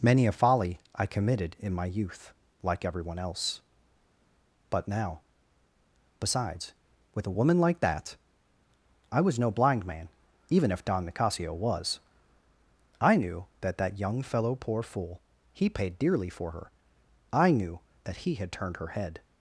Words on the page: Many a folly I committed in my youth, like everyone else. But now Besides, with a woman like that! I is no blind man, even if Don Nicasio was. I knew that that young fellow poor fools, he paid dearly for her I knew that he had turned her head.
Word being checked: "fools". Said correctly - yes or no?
no